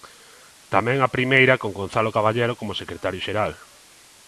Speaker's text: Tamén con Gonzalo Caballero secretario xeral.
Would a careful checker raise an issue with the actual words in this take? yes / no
yes